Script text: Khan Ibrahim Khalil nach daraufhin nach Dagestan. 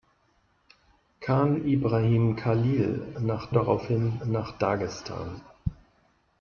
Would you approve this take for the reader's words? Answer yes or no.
yes